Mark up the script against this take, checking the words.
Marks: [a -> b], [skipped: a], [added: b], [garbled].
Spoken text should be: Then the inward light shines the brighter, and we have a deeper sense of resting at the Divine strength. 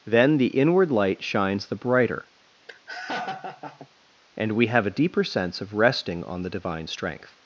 Then the inward light shines the brighter, and we have a deeper sense of resting [at -> on] the Divine strength.